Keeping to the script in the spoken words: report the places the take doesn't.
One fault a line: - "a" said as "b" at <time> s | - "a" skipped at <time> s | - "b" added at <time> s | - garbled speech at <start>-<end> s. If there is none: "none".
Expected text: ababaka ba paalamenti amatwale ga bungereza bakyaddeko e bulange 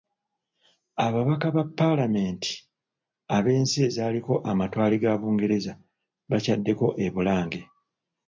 - "ab'ensi ezaaliko" added at 3.4 s